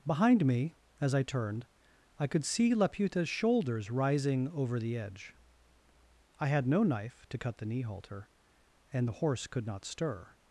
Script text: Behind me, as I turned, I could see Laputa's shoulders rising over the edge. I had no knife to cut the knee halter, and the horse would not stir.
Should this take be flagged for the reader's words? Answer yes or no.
yes